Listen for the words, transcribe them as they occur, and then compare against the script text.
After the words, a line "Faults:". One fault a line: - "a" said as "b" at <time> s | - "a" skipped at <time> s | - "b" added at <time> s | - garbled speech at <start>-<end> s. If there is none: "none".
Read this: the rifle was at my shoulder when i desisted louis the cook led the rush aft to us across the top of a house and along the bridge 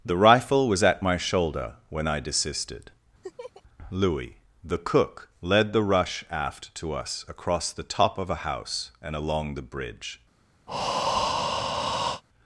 the rifle was at my shoulder when i desisted louis the cook led the rush aft to us across the top of a house and along the bridge
Faults:
none